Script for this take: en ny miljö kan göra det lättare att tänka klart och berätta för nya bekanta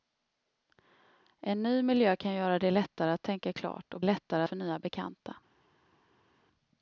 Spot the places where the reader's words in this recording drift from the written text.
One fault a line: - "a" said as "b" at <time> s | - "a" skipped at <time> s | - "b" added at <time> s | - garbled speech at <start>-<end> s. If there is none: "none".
- "berätta" said as "lättare" at 4.0 s